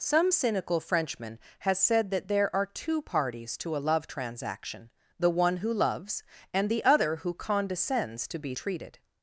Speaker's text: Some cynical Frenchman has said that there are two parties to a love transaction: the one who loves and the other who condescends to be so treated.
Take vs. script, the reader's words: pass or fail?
fail